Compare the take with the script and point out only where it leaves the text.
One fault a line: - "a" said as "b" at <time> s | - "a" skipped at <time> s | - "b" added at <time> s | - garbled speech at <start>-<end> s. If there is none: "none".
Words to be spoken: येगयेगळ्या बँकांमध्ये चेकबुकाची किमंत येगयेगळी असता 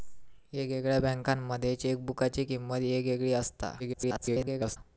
- garbled speech at 3.8-4.8 s